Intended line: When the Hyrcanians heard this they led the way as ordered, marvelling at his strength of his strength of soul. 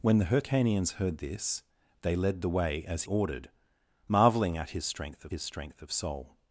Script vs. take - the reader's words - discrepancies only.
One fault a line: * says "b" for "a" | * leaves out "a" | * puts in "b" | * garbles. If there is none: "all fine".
all fine